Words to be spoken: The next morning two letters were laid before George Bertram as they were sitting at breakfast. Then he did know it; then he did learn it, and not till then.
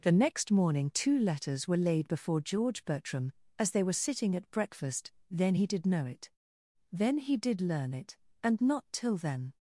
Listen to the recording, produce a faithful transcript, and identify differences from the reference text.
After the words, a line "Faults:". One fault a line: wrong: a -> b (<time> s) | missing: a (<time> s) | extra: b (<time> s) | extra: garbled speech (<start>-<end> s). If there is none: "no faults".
The next morning two letters were laid before George Bertram as they were sitting at breakfast. Then he did know it; then he did learn it, and not till then.
Faults:
no faults